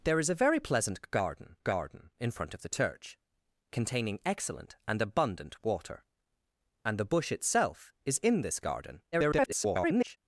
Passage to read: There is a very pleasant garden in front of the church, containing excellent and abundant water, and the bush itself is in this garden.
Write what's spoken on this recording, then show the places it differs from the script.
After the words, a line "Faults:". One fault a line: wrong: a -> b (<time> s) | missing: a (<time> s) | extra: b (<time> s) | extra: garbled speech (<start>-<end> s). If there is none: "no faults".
There is a very pleasant garden garden in front of the church, containing excellent and abundant water, and the bush itself is in this garden. [garbled]
Faults:
extra: garden (1.6 s)
extra: garbled speech (9.1-10.2 s)